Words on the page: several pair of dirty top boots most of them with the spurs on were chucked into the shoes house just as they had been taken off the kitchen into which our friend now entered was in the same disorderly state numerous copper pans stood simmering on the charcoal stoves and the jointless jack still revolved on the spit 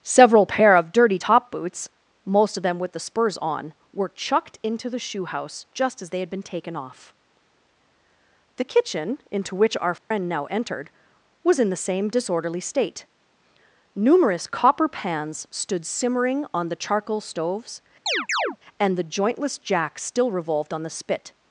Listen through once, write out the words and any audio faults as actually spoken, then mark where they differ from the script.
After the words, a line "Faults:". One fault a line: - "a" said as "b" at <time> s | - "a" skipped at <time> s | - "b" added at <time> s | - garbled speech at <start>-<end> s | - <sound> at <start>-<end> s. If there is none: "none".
several pair of dirty top boots most of them with the spurs on were chucked into the shoe house just as they had been taken off the kitchen into which our friend now entered was in the same disorderly state numerous copper pans stood simmering on the charcoal stoves and the jointless jack still revolved on the spit
Faults:
- "shoes" said as "shoe" at 5.0 s
- dropout at 10.0-10.1 s
- chirp at 18.1-18.6 s